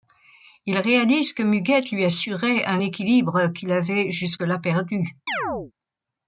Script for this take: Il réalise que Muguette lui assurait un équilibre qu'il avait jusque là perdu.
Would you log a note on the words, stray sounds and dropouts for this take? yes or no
yes